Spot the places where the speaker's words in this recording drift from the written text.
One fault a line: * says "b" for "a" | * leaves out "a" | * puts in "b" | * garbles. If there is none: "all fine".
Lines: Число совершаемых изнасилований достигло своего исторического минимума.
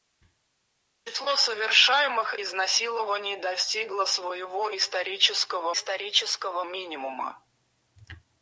* puts in "исторического"